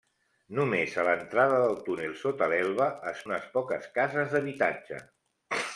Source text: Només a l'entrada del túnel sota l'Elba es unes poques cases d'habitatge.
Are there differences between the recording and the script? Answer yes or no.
no